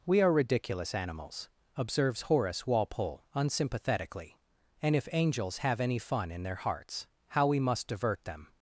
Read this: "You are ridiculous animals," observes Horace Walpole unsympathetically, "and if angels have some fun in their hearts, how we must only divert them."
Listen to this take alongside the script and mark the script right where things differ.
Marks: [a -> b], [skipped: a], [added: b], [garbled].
["You -> We] are ridiculous animals," observes Horace Walpole unsympathetically, "and if angels have [some -> any] fun in their hearts, how we must [skipped: only] divert them."